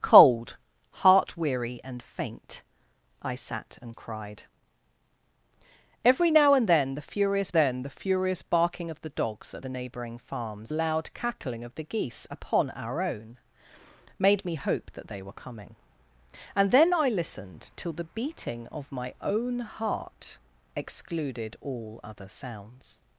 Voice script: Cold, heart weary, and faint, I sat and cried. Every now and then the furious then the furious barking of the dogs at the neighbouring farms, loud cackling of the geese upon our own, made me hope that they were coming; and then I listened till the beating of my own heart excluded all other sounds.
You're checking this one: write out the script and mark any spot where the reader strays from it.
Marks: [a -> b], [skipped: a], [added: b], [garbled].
Cold, heart weary, and faint, I sat and cried. Every now and then the furious then the furious barking of the dogs at the neighbouring farms, loud cackling of the geese upon our own, made me hope that they were coming; and then I listened till the beating of my own heart excluded all other sounds.